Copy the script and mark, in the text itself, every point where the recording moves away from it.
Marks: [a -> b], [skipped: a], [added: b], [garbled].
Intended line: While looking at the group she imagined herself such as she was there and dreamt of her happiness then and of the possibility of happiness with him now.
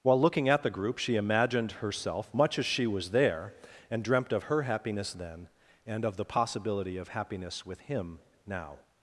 While looking at the group she imagined herself [such -> much] as she was there and dreamt of her happiness then and of the possibility of happiness with him now.